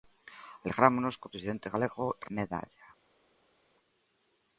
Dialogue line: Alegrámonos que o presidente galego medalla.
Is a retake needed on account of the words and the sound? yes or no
no